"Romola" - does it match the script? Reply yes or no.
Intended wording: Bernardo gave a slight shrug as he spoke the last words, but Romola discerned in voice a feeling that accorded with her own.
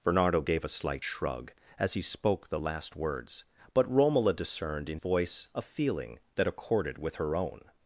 yes